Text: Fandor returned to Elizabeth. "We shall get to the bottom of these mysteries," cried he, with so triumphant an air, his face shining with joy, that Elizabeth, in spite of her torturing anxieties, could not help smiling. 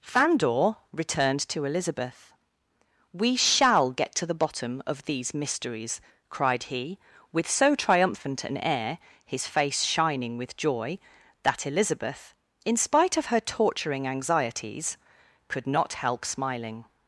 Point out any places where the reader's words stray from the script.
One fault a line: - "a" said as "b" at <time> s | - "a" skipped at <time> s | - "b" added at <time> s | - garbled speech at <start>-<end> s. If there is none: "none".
none